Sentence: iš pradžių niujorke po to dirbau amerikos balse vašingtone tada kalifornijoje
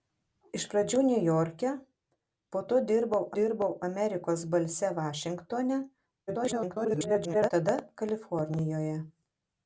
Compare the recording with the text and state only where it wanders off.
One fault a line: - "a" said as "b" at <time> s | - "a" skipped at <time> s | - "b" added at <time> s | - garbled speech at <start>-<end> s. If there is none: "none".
- "dirbau" added at 3.4 s
- garbled speech at 6.3-7.5 s